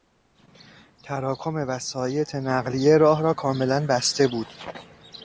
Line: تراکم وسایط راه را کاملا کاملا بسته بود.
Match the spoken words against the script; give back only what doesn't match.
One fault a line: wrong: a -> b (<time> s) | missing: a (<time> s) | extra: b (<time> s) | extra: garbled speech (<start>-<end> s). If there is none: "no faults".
extra: نقلیه (2.4 s)
missing: کاملا (3.9 s)